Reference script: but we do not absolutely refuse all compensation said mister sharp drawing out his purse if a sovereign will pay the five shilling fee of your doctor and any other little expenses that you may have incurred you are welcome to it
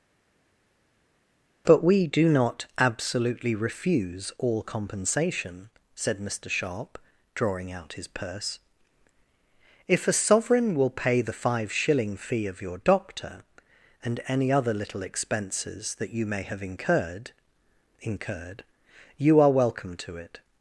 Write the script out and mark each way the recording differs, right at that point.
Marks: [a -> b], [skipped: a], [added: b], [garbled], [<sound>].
but we do not absolutely refuse all compensation said mister sharp drawing out his purse if a sovereign will pay the five shilling fee of your doctor and any other little expenses that you may have incurred [added: incurred] you are welcome to it